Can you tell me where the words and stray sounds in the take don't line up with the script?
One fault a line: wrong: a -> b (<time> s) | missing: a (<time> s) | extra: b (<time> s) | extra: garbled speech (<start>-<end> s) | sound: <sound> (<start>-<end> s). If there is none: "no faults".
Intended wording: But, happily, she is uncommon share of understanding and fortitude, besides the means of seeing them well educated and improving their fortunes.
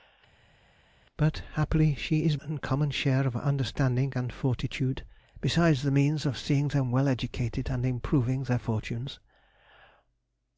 no faults